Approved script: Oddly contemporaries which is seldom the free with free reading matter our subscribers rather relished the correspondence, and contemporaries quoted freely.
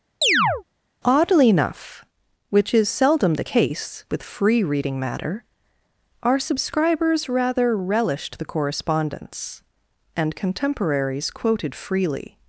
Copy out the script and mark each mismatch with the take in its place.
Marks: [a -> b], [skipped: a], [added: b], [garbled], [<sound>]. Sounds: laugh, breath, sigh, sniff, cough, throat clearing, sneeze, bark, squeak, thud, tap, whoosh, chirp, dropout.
[chirp] Oddly [contemporaries -> enough] which is seldom the [free -> case] with free reading matter our subscribers rather relished the correspondence, and contemporaries quoted freely.